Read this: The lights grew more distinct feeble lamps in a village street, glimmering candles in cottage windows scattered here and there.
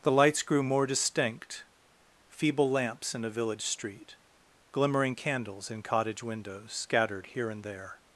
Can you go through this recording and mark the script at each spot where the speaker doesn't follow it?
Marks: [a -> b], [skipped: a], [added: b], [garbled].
The lights grew more distinct feeble lamps in a village street, glimmering candles in cottage windows scattered here and there.